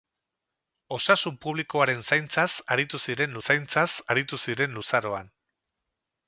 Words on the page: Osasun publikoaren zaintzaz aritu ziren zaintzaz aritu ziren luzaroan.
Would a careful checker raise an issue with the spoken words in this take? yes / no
no